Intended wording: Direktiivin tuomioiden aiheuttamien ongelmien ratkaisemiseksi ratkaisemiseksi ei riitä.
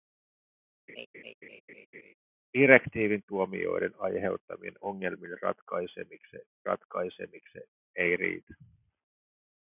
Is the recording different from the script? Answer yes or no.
no